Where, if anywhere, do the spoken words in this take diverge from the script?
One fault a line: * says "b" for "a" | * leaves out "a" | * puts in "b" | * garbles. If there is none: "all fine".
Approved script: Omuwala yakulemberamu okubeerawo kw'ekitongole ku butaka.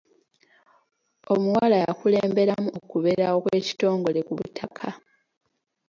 all fine